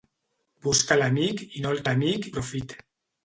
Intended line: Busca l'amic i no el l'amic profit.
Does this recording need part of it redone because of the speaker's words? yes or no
no